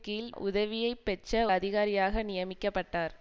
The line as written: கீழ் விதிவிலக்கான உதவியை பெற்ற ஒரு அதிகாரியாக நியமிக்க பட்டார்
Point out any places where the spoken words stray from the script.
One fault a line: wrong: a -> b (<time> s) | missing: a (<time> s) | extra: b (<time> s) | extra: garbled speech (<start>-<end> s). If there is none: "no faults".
missing: விதிவிலக்கான (0.3 s)
missing: ஒரு (1.5 s)